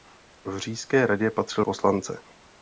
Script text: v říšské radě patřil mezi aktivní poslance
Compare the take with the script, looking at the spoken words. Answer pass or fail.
fail